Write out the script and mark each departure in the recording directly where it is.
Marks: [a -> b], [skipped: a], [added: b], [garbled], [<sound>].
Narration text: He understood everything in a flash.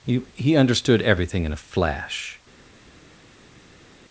He [added: he] understood everything in a flash.